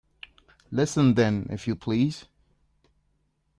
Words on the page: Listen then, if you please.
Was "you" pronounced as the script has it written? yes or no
yes